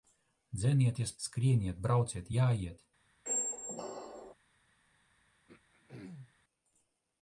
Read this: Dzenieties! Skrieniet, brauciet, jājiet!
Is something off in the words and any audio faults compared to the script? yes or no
yes